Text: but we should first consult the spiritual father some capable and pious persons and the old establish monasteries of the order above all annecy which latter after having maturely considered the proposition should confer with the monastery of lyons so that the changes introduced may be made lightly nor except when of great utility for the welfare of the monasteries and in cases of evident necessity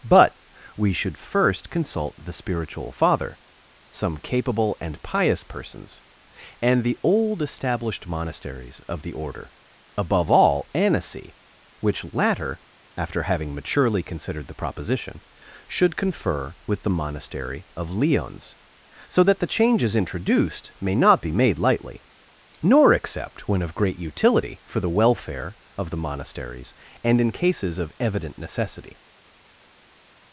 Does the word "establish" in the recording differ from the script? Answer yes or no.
yes